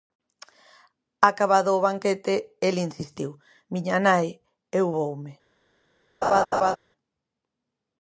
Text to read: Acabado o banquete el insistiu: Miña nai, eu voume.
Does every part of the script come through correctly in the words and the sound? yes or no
no